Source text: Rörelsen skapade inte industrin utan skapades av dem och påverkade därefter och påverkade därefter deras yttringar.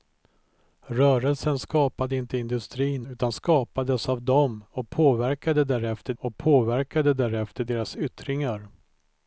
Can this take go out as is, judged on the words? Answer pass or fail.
pass